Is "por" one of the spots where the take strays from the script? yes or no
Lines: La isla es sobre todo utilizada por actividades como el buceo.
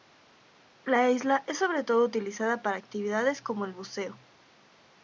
yes